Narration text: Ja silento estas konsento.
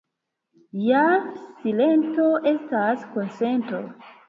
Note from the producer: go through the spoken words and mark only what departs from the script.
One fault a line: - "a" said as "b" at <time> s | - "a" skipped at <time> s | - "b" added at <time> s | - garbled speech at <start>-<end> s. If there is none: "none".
none